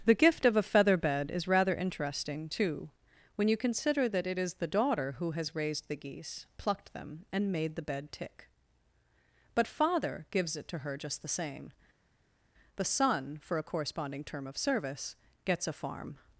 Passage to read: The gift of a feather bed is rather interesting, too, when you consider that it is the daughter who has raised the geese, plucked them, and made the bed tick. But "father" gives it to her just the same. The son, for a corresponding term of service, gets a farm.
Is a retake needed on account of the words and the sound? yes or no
no